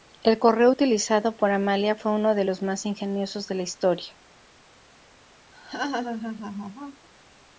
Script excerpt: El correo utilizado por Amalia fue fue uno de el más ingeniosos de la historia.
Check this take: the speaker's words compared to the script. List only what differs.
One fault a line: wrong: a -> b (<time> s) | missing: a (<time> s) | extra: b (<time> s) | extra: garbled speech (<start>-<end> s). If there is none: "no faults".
missing: fue (2.1 s)
wrong: el -> los (2.4 s)